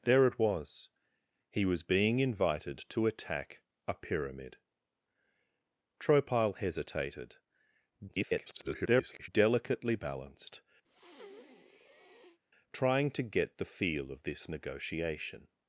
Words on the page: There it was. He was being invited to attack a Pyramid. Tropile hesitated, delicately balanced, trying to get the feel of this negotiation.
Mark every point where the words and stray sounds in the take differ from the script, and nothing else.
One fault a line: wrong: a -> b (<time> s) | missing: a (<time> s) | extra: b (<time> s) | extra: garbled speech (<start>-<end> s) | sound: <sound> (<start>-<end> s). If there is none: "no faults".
extra: garbled speech (8.1-9.3 s)
sound: breath (10.8-12.4 s)